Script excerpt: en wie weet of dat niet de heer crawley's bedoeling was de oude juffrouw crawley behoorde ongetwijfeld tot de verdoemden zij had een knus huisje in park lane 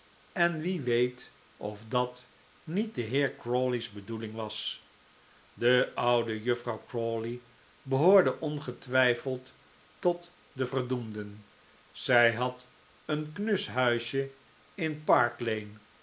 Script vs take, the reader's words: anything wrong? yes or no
no